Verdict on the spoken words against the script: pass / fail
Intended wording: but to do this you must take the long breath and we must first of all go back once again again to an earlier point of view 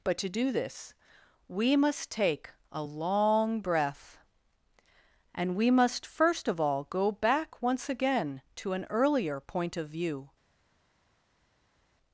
fail